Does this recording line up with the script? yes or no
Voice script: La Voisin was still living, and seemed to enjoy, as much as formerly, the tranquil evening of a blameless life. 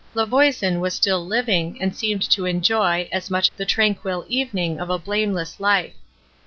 no